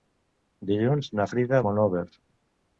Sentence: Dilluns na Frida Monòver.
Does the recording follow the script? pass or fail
pass